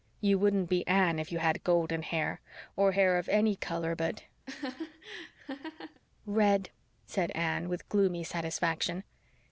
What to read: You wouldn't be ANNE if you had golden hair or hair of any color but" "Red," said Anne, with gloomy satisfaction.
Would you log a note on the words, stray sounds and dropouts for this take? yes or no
yes